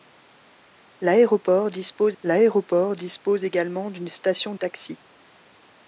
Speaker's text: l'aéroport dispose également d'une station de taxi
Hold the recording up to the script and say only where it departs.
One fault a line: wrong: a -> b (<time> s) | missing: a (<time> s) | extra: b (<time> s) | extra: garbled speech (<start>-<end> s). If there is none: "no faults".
extra: l'aéroport dispose (2.2 s)
missing: de (4.5 s)